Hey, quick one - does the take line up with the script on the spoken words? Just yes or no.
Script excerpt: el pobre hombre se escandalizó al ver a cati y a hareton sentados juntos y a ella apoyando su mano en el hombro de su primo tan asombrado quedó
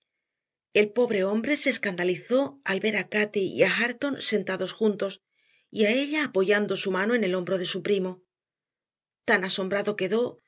yes